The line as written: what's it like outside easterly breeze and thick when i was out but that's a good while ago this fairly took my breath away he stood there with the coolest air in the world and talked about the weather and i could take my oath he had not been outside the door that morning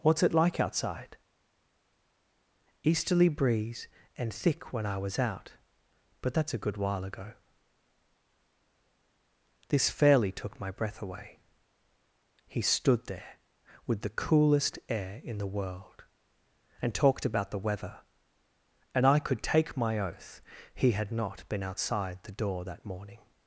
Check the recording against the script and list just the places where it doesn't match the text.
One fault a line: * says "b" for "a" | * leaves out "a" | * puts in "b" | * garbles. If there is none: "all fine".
all fine